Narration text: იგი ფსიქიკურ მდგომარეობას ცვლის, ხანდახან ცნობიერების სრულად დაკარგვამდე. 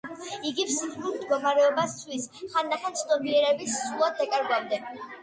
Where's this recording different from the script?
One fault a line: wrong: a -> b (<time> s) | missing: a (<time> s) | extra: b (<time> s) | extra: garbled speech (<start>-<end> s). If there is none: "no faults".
no faults